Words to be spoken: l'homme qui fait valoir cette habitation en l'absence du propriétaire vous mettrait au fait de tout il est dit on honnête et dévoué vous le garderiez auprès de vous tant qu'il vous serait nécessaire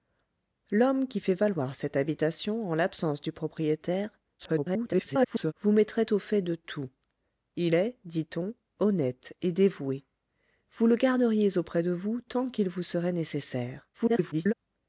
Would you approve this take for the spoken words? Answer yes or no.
no